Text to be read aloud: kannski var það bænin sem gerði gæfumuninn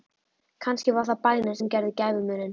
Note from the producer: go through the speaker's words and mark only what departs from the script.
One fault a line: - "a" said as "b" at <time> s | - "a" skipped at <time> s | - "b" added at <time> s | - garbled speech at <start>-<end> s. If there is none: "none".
none